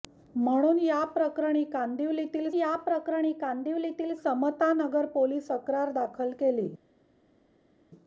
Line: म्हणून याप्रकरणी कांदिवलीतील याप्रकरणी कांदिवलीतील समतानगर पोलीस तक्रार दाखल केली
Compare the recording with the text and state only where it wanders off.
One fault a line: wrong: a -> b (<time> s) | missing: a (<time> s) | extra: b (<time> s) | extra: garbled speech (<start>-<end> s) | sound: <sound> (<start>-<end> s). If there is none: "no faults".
no faults